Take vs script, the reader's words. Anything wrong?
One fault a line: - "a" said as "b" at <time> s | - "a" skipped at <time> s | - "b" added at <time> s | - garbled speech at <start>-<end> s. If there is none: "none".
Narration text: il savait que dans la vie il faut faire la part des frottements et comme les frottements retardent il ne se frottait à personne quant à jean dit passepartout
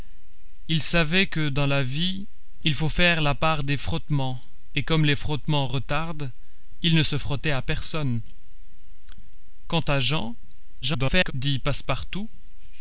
- garbled speech at 10.8-11.3 s